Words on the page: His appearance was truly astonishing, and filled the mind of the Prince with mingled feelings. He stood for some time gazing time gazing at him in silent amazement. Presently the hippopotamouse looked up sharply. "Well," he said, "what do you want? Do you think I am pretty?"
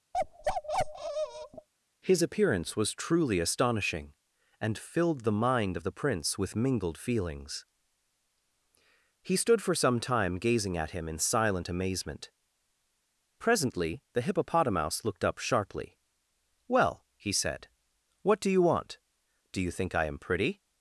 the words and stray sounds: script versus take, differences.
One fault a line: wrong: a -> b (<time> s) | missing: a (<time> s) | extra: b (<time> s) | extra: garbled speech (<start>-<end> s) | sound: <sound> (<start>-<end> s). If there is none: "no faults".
sound: bark (0.1-1.7 s)
missing: time gazing (10.8 s)